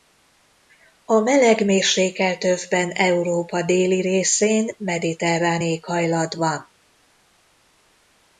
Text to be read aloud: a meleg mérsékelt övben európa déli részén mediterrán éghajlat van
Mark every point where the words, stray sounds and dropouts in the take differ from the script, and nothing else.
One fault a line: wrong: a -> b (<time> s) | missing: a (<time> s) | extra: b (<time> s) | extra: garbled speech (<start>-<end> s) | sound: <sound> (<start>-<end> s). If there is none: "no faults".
no faults